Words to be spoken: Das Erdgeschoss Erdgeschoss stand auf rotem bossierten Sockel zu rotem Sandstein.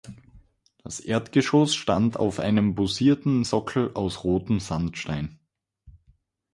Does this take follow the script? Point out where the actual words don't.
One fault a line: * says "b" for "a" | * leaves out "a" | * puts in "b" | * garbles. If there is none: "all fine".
* leaves out "Erdgeschoss"
* says "einem" for "rotem"
* says "aus" for "zu"